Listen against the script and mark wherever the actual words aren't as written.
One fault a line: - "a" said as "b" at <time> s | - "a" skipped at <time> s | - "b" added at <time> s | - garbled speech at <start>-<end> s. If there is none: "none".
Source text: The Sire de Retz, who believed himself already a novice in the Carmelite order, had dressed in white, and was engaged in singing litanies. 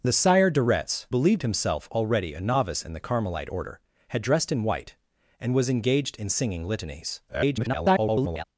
- "who" skipped at 1.1 s
- garbled speech at 7.3-8.4 s